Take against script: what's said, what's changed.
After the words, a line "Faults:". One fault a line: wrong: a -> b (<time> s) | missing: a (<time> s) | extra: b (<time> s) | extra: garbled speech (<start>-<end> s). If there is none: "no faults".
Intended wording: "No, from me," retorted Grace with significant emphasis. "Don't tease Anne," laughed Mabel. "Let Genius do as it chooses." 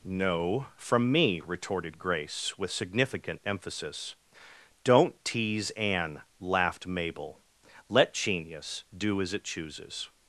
"No, from me," retorted Grace with significant emphasis. "Don't tease Anne," laughed Mabel. "Let Genius do as it chooses."
Faults:
no faults